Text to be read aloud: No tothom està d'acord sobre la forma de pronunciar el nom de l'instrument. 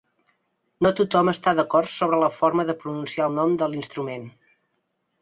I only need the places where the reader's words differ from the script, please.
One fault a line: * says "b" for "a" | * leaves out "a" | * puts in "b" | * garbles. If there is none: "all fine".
all fine